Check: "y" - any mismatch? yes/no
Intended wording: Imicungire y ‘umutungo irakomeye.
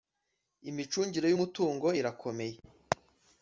no